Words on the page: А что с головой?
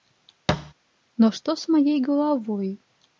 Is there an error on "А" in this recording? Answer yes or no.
yes